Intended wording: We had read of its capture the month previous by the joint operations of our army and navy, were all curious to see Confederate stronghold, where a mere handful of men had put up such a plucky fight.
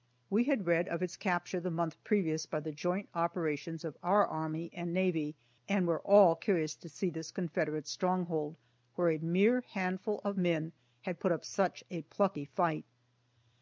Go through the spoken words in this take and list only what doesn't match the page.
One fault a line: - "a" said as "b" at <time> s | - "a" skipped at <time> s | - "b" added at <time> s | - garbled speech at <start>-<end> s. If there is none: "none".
- "and" added at 5.7 s
- "this" added at 7.1 s